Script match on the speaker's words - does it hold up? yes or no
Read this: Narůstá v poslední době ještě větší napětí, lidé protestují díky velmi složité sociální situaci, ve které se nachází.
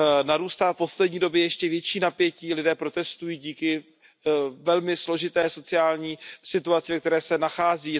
yes